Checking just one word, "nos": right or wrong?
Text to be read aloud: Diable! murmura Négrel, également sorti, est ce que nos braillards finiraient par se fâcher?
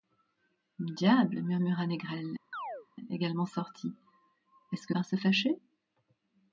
wrong